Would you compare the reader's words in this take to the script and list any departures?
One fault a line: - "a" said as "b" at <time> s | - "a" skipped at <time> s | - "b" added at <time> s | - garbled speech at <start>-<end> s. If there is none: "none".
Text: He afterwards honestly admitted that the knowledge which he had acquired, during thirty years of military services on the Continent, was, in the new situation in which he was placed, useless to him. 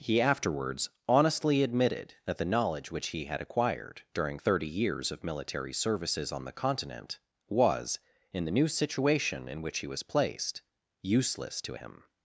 none